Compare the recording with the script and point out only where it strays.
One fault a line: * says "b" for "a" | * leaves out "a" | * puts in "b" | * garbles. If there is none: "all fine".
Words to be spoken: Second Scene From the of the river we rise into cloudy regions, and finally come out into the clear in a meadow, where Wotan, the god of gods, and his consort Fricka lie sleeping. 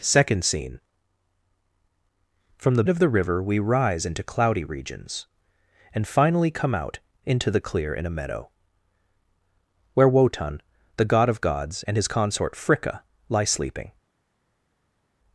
all fine